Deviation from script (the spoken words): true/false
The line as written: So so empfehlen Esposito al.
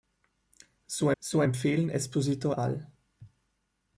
false